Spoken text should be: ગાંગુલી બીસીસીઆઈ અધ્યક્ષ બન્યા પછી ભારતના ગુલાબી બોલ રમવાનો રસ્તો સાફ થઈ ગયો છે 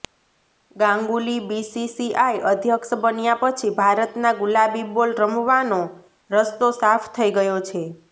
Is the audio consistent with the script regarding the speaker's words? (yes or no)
yes